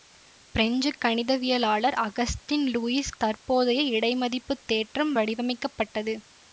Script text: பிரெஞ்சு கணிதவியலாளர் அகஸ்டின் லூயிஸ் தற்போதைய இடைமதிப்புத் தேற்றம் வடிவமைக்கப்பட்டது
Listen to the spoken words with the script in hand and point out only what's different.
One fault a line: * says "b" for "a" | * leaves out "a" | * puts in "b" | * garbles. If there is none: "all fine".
all fine